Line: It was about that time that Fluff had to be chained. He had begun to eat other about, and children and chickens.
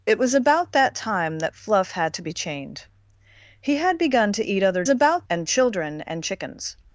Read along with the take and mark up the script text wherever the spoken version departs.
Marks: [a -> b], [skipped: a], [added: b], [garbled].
It was about that time that Fluff had to be chained. He had begun to eat other about, and children and chickens.